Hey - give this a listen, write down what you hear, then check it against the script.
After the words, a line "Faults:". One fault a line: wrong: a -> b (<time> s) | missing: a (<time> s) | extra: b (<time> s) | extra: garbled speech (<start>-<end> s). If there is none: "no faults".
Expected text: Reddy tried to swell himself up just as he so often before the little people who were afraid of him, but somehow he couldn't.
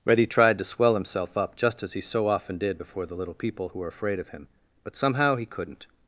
Reddy tried to swell himself up just as he so often did before the little people who were afraid of him, but somehow he couldn't.
Faults:
extra: did (2.6 s)